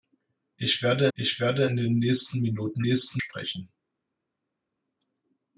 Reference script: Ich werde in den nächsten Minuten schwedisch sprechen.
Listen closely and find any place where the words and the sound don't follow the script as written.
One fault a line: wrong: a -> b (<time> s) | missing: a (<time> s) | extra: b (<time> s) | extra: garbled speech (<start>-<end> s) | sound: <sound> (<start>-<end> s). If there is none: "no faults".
extra: ich werde (1.1 s)
wrong: schwedisch -> nächsten (2.8 s)